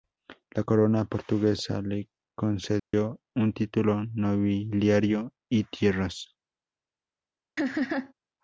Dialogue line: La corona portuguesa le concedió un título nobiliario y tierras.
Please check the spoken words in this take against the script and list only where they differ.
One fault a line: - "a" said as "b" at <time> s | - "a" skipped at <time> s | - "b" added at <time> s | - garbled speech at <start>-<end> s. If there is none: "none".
none